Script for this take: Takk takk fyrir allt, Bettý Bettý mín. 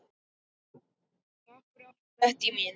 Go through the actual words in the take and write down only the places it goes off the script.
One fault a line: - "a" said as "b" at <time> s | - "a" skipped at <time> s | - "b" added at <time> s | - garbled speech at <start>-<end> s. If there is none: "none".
- "takk" skipped at 1.6 s
- "Bettý" skipped at 2.5 s